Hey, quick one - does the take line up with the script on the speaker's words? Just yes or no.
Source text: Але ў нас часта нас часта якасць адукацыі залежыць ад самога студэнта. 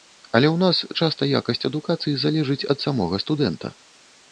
no